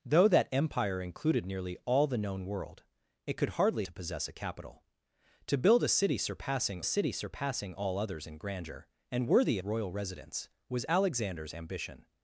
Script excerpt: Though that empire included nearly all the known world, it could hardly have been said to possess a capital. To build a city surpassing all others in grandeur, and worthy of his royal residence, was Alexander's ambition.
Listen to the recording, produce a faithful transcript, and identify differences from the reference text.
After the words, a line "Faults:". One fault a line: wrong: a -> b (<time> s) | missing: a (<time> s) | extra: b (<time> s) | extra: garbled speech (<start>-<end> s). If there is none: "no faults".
Though that empire included nearly all the known world, it could hardly to possess a capital. To build a city surpassing city surpassing all others in grandeur, and worthy royal residence, was Alexander's ambition.
Faults:
missing: have been said (3.9 s)
extra: city surpassing (6.8 s)
missing: of his (9.6 s)